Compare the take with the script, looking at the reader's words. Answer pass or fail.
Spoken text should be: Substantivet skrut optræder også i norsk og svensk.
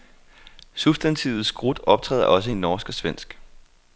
pass